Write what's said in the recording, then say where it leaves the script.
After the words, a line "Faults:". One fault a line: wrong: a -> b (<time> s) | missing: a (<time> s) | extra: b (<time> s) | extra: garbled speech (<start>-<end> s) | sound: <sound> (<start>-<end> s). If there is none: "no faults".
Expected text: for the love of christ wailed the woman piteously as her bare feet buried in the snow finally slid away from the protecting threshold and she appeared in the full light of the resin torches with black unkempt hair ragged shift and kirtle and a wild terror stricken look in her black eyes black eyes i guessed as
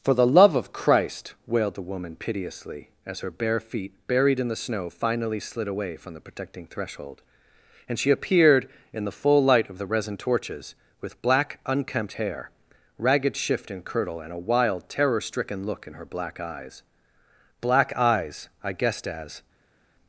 for the love of christ wailed the woman piteously as her bare feet buried in the snow finally slid away from the protecting threshold and she appeared in the full light of the resin torches with black unkempt hair ragged shift and kirtle and a wild terror stricken look in her black eyes black eyes i guessed as
Faults:
no faults